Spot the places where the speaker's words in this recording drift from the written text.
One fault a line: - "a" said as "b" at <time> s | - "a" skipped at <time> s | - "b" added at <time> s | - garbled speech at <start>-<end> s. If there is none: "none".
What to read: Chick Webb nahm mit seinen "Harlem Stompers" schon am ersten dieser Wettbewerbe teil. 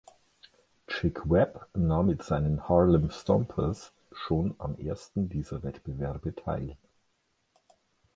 none